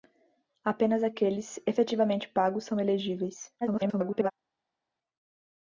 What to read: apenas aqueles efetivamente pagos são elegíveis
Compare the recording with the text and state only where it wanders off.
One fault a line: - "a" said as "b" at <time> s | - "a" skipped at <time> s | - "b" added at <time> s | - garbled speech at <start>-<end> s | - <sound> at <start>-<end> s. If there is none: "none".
- garbled speech at 3.6-4.3 s